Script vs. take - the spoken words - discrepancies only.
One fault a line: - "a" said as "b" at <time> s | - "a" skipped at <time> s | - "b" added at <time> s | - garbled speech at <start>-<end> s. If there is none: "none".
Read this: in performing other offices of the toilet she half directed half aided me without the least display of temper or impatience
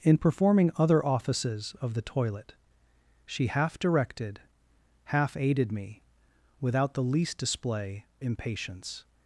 - "of temper or" skipped at 8.1 s